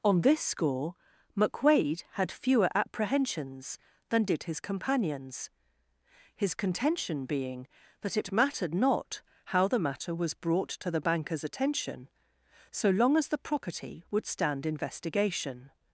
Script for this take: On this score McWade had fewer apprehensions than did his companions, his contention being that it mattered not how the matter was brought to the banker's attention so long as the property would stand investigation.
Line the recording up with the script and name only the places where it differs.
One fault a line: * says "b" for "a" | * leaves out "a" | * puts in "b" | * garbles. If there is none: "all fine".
all fine